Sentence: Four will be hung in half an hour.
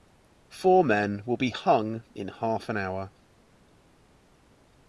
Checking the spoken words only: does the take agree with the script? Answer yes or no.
no